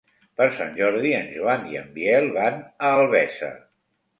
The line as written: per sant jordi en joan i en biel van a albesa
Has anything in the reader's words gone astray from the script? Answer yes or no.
no